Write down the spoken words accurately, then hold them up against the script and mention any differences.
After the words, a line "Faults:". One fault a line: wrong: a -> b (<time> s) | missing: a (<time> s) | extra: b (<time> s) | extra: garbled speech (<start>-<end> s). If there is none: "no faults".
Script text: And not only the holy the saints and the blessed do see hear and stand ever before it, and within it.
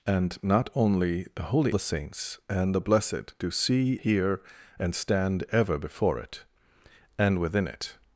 And not only the holy the saints and the blessed do see hear and stand ever before it, and within it.
Faults:
no faults